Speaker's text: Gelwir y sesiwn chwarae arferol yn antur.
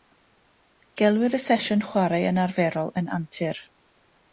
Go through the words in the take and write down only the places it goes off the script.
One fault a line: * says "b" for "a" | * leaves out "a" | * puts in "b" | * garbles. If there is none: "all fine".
* puts in "yn"